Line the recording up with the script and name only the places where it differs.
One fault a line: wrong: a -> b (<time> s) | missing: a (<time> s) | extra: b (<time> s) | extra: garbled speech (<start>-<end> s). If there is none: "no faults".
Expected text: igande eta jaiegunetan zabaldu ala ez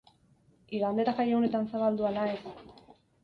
no faults